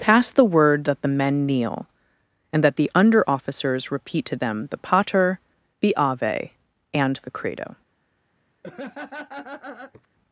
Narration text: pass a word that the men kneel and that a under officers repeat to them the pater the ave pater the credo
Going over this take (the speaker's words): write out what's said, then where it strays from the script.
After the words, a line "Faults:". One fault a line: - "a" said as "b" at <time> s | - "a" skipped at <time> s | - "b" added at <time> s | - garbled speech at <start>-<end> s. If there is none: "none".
pass the word that the men kneel and that the under officers repeat to them the pater the ave and the credo
Faults:
- "a" said as "the" at 0.3 s
- "a" said as "the" at 2.8 s
- "pater" said as "and" at 6.9 s